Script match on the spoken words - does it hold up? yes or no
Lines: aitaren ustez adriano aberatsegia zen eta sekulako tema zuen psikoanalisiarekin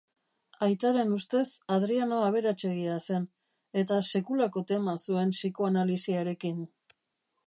yes